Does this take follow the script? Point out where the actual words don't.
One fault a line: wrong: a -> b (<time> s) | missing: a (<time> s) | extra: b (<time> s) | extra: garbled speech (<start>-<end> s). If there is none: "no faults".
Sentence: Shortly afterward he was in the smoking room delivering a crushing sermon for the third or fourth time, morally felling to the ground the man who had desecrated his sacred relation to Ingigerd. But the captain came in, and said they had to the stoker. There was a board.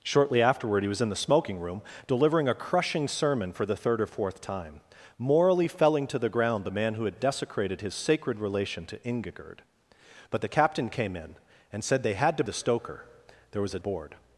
no faults